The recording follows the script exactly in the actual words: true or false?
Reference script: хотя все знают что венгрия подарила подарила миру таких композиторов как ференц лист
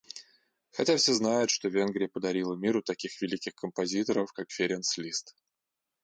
false